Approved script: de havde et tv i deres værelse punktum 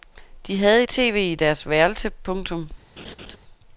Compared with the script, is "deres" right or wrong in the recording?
right